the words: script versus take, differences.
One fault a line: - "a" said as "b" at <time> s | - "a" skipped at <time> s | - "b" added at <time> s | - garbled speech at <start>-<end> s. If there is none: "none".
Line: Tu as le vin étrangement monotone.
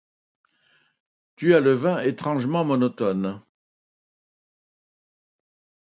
none